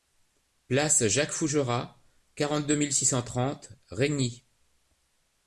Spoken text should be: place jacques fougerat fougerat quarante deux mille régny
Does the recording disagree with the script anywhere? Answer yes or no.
yes